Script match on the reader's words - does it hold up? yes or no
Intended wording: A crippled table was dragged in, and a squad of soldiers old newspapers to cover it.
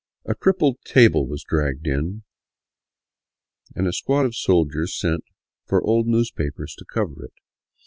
no